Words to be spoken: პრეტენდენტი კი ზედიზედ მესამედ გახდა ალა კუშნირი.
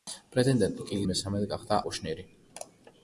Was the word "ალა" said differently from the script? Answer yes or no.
yes